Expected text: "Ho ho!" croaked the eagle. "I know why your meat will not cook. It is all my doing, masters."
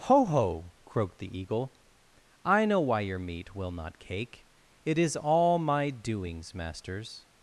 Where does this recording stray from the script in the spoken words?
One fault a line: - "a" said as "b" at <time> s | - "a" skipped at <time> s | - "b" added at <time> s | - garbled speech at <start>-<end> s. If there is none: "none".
- "cook" said as "cake" at 4.0 s
- "doing" said as "doings" at 5.9 s